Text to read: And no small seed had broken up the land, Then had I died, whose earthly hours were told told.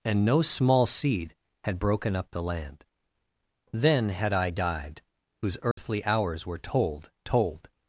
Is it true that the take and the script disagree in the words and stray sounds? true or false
true